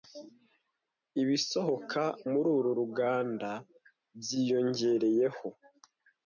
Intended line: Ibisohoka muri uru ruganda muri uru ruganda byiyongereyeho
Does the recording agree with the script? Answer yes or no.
no